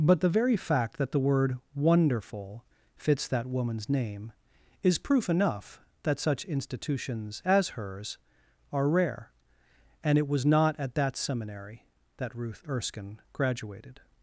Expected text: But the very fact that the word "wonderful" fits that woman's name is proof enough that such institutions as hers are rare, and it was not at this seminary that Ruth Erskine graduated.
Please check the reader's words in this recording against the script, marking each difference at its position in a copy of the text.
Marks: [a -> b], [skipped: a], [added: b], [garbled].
But the very fact that the word "wonderful" fits that woman's name is proof enough that such institutions as hers are rare, and it was not at [this -> that] seminary that Ruth Erskine graduated.